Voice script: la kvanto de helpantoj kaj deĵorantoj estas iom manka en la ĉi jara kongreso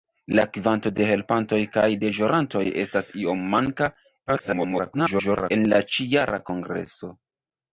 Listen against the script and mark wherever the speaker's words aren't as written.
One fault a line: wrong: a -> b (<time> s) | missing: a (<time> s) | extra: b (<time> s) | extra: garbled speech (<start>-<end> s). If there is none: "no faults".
extra: garbled speech (4.3-5.5 s)